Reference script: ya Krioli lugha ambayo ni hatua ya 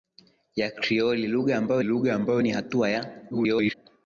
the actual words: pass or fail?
fail